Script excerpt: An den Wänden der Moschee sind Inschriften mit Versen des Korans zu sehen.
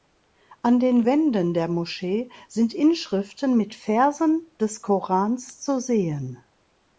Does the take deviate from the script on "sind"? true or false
false